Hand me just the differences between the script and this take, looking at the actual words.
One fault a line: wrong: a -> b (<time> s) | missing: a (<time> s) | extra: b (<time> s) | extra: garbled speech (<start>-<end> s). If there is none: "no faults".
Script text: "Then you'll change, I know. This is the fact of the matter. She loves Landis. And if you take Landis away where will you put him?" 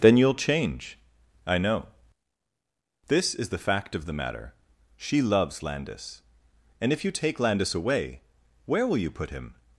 no faults